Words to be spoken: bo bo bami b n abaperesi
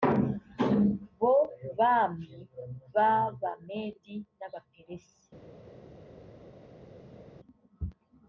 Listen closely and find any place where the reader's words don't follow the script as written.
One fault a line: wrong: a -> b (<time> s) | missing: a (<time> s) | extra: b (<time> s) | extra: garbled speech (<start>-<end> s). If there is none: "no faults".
missing: bo (1.3 s)
extra: abamedi (3.1 s)